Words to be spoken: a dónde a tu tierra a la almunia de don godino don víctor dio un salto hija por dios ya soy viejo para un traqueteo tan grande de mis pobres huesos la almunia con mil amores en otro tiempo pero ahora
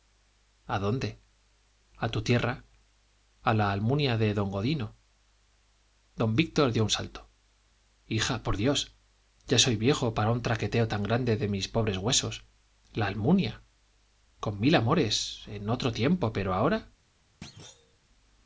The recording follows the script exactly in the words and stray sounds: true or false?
false